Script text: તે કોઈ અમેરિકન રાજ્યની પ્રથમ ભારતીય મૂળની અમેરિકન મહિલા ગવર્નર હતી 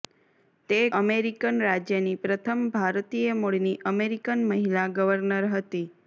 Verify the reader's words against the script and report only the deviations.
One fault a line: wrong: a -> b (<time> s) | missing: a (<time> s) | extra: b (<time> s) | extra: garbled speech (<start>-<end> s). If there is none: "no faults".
missing: કોઈ (0.8 s)